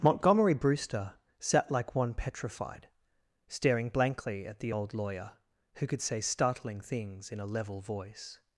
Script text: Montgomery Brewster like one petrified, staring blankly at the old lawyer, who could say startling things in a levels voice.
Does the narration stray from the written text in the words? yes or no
yes